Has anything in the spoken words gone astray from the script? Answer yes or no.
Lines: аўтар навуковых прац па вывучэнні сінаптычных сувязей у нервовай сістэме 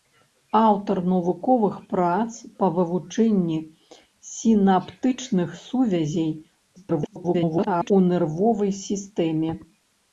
yes